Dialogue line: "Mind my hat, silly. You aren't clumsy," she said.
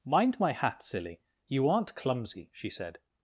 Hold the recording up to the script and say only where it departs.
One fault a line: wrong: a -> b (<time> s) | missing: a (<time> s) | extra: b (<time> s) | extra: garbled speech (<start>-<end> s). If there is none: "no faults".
no faults